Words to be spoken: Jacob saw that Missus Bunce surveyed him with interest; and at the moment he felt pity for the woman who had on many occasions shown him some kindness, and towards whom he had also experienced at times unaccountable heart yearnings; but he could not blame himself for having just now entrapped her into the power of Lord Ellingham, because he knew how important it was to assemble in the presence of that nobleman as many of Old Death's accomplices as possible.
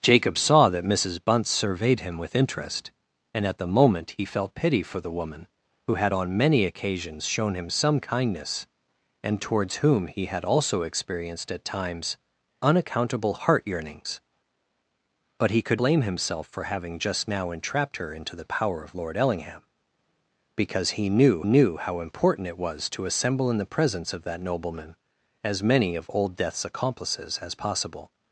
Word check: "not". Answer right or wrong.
wrong